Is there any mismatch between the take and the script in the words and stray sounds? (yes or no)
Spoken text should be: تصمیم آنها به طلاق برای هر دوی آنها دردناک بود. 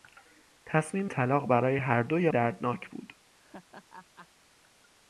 yes